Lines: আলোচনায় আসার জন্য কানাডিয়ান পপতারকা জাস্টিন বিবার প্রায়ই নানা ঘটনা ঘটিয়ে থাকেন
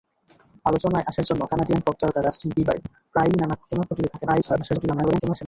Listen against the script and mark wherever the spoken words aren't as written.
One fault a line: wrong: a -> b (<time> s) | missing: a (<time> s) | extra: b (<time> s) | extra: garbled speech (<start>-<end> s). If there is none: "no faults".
extra: garbled speech (4.3-5.4 s)